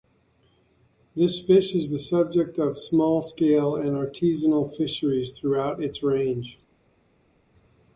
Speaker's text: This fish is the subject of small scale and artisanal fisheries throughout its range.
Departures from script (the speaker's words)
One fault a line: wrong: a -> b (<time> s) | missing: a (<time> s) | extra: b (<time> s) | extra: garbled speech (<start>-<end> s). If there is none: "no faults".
no faults